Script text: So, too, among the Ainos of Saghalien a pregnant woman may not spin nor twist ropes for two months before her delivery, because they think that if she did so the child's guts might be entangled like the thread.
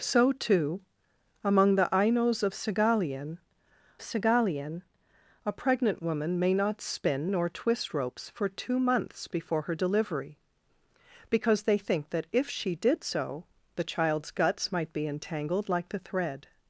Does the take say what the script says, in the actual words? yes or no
no